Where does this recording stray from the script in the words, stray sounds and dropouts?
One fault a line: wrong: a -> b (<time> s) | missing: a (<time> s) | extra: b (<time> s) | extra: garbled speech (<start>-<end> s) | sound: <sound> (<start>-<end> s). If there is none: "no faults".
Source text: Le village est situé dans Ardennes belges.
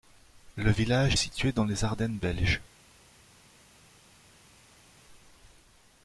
extra: les (1.6 s)